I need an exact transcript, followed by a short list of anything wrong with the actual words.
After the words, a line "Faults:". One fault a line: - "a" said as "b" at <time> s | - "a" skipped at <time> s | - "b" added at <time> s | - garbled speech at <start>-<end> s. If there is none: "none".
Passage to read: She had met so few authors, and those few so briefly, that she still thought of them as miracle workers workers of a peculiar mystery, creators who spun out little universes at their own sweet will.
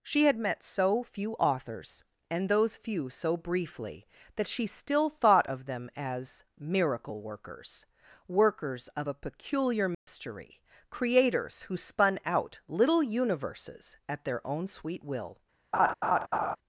She had met so few authors, and those few so briefly, that she still thought of them as miracle workers workers of a peculiar mystery, creators who spun out little universes at their own sweet will.
Faults:
none